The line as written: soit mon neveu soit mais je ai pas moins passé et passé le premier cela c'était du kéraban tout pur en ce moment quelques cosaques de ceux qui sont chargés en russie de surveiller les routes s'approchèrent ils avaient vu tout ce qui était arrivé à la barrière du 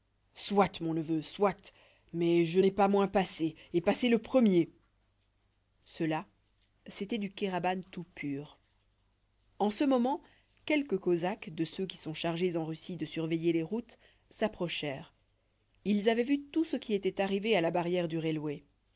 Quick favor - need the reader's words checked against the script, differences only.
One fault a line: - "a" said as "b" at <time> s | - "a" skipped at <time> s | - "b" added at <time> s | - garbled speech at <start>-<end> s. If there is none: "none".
none